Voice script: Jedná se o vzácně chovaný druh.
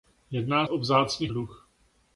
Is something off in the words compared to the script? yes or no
yes